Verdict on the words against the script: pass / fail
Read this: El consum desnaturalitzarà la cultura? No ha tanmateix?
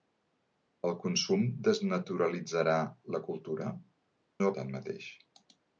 pass